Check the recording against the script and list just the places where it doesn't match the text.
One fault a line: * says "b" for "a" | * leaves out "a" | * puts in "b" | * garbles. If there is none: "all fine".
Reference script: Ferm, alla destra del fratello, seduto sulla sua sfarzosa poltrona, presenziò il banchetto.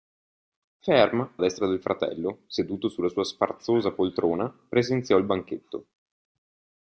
* leaves out "alla"